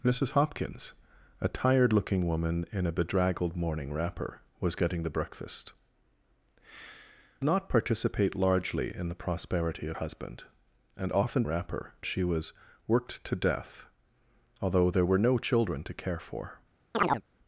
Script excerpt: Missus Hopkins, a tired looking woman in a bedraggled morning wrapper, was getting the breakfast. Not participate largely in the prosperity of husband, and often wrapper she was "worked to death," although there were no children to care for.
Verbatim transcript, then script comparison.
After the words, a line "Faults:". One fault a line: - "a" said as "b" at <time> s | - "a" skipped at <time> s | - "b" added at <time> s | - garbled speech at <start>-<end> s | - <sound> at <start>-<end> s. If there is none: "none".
Missus Hopkins, a tired looking woman in a bedraggled morning wrapper, was getting the breakfast. Not participate largely in the prosperity of husband, and often wrapper she was "worked to death," although there were no children to care for.
Faults:
- chirp at 16.9-17.2 s